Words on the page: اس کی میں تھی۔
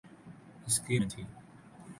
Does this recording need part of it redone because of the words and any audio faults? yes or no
no